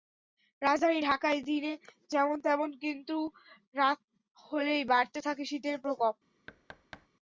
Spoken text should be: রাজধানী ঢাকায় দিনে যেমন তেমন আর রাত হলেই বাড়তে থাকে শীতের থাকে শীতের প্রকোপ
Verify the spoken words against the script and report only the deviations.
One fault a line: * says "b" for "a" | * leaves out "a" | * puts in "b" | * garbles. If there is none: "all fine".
* says "কিন্তু" for "আর"
* leaves out "থাকে শীতের"